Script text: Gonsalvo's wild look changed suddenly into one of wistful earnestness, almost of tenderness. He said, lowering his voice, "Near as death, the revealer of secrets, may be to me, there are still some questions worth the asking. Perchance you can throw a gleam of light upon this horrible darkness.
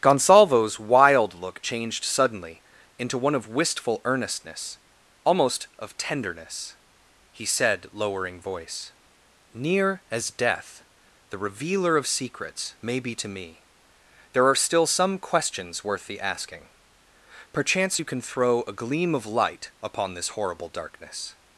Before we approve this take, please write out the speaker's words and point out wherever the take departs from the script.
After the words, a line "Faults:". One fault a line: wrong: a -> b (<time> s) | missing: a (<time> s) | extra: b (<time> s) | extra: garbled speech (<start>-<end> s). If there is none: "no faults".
Gonsalvo's wild look changed suddenly into one of wistful earnestness, almost of tenderness. He said, lowering voice, "Near as death, the revealer of secrets, may be to me, there are still some questions worth the asking. Perchance you can throw a gleam of light upon this horrible darkness.
Faults:
missing: his (8.4 s)